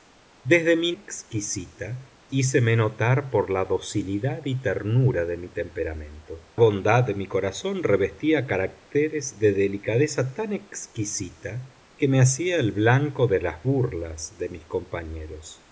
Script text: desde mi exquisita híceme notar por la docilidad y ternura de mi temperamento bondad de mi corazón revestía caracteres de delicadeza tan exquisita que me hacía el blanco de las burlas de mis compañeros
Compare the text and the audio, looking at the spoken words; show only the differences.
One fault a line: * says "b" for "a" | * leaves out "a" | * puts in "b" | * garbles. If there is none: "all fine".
all fine